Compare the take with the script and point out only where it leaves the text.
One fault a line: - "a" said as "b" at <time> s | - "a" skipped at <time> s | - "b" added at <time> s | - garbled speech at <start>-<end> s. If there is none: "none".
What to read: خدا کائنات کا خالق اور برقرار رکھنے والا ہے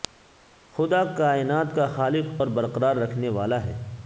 none